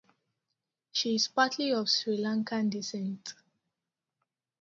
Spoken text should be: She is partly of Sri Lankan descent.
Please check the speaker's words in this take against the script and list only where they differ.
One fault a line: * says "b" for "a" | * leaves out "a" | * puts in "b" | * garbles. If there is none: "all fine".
all fine